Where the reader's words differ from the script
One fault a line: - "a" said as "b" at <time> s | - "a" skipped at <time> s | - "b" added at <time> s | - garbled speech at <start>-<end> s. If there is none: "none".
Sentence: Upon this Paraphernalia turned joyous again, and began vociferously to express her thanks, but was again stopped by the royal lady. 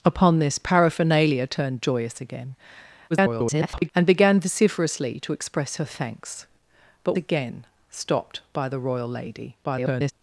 - garbled speech at 3.1-3.9 s
- "was" skipped at 7.2 s
- garbled speech at 9.6-10.1 s